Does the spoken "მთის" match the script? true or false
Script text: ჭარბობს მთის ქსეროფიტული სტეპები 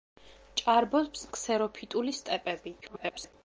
false